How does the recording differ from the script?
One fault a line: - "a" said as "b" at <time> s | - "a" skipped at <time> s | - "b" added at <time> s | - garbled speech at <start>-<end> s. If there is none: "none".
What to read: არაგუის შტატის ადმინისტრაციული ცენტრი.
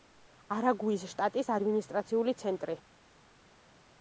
none